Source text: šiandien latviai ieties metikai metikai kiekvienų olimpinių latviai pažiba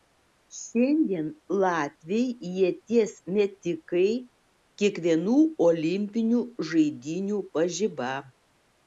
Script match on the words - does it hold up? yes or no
no